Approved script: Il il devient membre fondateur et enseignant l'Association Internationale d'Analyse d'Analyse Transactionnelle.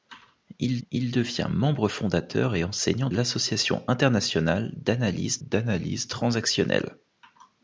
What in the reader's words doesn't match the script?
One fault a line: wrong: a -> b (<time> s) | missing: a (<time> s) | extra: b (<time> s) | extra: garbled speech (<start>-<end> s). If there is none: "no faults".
no faults